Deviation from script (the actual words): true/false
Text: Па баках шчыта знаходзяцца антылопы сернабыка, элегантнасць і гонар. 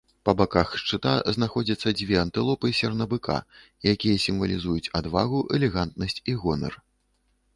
true